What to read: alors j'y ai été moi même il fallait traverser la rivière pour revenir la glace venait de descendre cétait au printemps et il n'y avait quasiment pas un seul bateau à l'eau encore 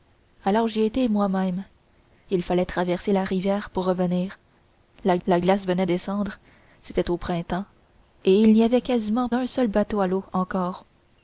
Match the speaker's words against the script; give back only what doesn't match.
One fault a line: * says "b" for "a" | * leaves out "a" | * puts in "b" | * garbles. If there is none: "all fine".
* puts in "la"
* leaves out "de"
* leaves out "pas"